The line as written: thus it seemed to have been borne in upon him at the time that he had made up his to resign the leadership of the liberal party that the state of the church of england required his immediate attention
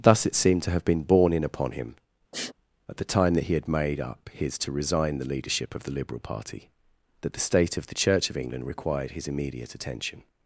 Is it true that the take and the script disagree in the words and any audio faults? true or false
true